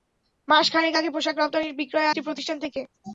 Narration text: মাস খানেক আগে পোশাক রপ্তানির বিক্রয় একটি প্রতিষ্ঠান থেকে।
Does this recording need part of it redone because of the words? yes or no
no